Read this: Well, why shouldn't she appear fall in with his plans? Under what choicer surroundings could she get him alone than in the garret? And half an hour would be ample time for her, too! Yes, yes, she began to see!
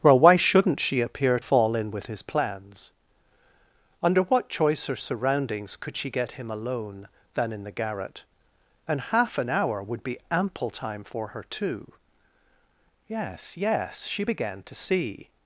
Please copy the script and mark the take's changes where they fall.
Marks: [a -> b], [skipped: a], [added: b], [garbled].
Well, why shouldn't she appear fall in with his plans? Under what choicer surroundings could she get him alone than in the garret? And half an hour would be ample time for her, too! Yes, yes, she began to see!